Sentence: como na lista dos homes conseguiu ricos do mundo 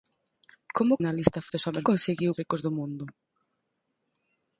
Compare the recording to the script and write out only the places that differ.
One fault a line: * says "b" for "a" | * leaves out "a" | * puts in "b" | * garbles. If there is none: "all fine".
all fine